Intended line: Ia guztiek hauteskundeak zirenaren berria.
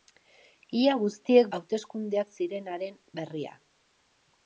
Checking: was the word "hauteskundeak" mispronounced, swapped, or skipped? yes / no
no